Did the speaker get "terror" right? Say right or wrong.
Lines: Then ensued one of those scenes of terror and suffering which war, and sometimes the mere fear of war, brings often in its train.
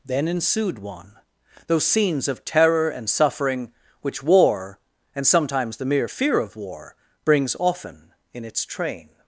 right